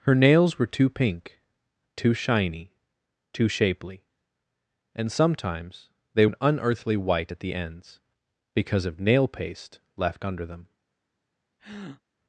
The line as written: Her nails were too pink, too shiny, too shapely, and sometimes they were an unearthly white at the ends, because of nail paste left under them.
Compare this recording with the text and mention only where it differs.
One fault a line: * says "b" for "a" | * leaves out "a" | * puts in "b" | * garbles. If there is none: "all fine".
* leaves out "were"